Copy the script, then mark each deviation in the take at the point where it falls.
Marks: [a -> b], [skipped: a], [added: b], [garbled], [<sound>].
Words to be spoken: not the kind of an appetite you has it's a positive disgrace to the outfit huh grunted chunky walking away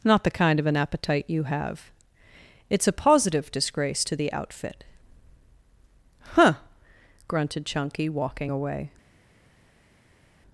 not the kind of an appetite you [has -> have] it's a positive disgrace to the outfit huh grunted chunky walking away